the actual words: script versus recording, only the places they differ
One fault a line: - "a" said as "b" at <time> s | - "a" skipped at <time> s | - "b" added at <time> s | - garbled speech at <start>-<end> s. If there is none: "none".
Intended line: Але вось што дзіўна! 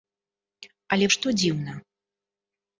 - "вось" skipped at 1.1 s